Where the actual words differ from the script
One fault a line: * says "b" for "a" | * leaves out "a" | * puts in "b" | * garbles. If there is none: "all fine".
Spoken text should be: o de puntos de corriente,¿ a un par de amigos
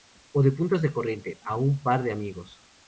all fine